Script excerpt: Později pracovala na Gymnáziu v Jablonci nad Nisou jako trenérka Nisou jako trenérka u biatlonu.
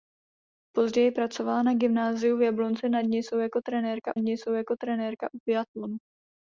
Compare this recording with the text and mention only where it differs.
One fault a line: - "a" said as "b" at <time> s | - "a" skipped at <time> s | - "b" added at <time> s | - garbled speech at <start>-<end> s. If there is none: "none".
none